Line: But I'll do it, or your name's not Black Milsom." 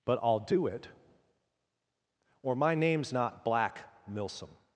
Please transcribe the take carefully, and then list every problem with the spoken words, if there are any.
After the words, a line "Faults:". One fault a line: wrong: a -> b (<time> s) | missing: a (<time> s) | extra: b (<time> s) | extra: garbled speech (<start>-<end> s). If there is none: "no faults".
But I'll do it, or my name's not Black Milsom."
Faults:
wrong: your -> my (2.5 s)